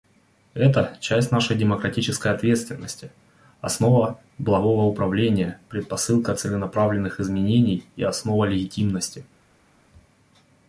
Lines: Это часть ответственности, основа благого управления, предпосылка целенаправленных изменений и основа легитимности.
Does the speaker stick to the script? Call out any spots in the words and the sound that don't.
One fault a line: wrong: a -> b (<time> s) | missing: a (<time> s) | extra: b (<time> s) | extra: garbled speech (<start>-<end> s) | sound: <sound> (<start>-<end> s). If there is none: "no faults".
extra: нашей демократической (1.3 s)